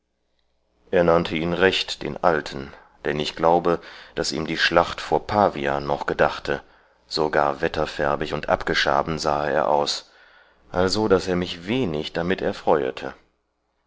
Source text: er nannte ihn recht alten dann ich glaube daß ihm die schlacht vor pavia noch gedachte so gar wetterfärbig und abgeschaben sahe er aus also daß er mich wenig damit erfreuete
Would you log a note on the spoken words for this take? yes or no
yes